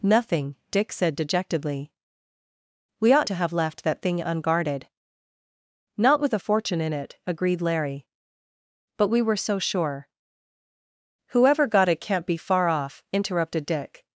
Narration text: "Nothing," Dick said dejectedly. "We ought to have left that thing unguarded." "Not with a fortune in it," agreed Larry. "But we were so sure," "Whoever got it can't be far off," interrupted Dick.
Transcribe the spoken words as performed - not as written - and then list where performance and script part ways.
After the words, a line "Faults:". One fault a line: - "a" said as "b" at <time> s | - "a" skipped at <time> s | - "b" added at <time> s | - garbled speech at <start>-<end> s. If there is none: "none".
"Nothing," Dick said dejectedly. "We ought to have left that thing unguarded." "Not with a fortune in it," agreed Larry. "But we were so sure," "Whoever got it can't be far off," interrupted Dick.
Faults:
none